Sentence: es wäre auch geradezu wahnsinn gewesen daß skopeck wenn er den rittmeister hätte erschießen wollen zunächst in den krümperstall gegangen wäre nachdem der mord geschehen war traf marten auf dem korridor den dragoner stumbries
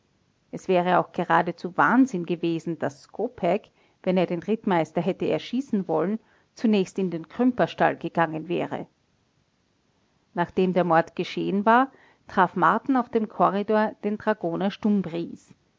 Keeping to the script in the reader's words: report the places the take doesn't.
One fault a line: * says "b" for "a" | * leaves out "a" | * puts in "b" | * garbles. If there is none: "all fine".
all fine